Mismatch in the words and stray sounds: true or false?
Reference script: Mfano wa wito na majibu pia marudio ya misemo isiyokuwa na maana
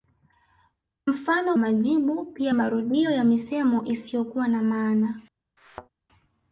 true